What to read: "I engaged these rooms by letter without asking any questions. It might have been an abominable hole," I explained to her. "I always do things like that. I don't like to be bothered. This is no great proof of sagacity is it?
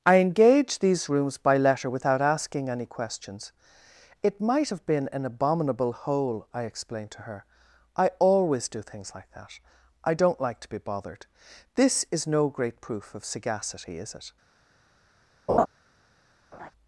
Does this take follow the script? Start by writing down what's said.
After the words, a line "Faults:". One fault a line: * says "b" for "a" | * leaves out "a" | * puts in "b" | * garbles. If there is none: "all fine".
"I engaged these rooms by letter without asking any questions. It might have been an abominable hole," I explained to her. "I always do things like that. I don't like to be bothered. This is no great proof of sagacity is it?
Faults:
all fine